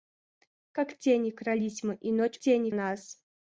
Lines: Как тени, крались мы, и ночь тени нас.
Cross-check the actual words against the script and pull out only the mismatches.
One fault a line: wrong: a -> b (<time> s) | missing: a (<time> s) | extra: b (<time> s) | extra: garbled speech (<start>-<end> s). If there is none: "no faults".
no faults